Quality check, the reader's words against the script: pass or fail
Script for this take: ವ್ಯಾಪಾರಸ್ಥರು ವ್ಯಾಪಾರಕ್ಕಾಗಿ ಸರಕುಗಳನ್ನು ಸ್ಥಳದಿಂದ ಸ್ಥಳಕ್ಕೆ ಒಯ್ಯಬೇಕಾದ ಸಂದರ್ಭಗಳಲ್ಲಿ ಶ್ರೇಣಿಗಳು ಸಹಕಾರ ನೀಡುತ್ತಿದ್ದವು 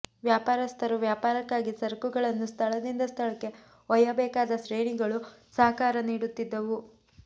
fail